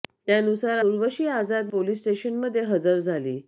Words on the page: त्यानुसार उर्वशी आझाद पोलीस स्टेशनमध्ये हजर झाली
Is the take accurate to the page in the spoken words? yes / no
yes